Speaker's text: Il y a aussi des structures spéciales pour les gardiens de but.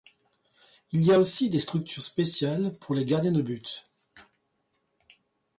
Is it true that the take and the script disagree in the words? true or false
false